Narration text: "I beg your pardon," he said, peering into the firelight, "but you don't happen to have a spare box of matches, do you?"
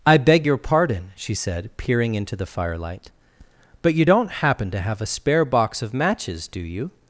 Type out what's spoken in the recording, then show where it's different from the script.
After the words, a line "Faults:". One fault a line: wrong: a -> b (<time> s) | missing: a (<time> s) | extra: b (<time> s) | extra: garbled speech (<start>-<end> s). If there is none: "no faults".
"I beg your pardon," she said, peering into the firelight, "but you don't happen to have a spare box of matches, do you?"
Faults:
wrong: he -> she (1.2 s)